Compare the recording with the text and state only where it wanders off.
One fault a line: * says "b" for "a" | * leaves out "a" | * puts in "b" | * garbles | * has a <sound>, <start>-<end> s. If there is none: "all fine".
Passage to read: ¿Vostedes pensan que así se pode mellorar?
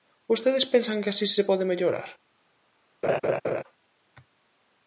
* has a laugh, 3.0-3.6 s